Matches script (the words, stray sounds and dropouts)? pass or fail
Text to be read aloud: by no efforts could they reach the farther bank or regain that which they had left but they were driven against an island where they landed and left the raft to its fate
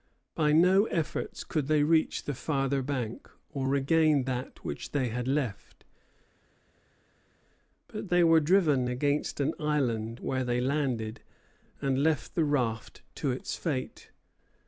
pass